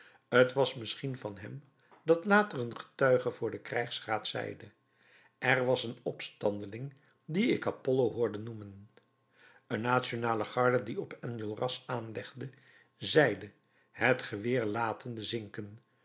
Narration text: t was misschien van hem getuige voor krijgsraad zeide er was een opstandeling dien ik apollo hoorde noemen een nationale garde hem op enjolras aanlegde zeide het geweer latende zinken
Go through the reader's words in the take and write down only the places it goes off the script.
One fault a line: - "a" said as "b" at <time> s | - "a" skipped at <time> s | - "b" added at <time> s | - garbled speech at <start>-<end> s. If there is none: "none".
- "dat later een" added at 2.0 s
- "den" added at 3.5 s
- "hem" said as "die" at 10.8 s